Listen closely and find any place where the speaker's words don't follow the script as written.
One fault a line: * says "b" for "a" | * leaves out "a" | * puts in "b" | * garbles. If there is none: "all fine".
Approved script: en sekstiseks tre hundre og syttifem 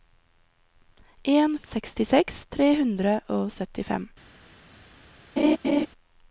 all fine